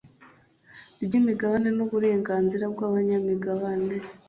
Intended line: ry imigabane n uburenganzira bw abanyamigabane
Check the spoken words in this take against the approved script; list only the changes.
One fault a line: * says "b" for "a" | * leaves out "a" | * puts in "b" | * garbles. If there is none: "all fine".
all fine